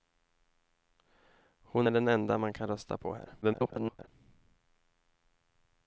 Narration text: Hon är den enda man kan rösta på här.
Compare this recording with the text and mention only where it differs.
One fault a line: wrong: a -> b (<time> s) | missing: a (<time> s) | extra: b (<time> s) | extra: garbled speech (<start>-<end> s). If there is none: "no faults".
extra: garbled speech (3.4-4.1 s)